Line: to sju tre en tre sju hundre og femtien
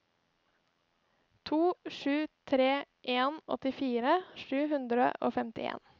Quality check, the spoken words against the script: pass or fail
fail